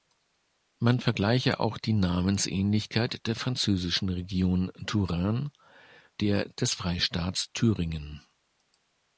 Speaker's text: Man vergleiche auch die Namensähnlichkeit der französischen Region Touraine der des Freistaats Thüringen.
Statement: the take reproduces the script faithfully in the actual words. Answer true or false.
true